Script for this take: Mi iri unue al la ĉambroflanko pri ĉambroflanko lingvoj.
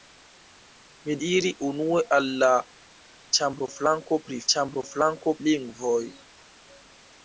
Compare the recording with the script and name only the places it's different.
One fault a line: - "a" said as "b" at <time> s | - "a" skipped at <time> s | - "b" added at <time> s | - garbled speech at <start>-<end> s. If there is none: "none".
none